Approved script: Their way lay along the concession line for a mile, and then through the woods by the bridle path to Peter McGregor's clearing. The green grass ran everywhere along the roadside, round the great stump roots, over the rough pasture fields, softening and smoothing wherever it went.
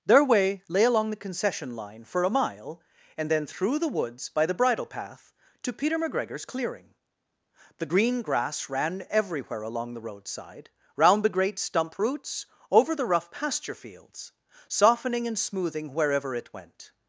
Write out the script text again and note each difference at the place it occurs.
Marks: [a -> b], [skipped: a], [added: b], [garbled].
Their way lay along the concession line for a mile, and then through the woods by the bridle path to Peter McGregor's clearing. The green grass ran everywhere along the roadside, round the great stump roots, over the rough pasture fields, softening and smoothing wherever it went.